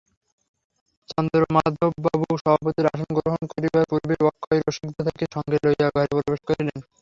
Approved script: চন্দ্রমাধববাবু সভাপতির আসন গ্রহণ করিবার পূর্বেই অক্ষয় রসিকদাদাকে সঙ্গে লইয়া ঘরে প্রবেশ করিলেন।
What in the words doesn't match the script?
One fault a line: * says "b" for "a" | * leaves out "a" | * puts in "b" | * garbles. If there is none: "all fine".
all fine